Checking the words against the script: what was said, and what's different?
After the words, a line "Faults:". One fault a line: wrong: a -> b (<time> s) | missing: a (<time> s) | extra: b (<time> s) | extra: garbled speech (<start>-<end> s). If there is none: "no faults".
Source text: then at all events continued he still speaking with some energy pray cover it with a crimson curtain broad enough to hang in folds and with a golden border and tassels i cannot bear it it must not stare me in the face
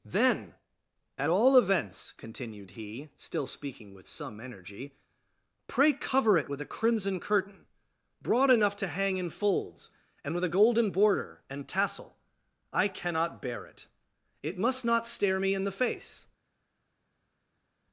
then at all events continued he still speaking with some energy pray cover it with a crimson curtain broad enough to hang in folds and with a golden border and tassel i cannot bear it it must not stare me in the face
Faults:
wrong: tassels -> tassel (11.7 s)